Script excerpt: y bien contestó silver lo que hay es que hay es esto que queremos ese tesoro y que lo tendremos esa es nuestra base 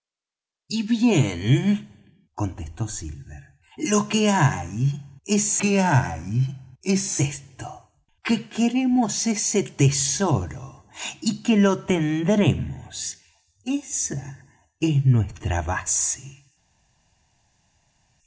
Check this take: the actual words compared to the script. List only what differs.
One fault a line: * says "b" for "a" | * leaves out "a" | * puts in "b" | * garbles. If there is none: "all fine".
all fine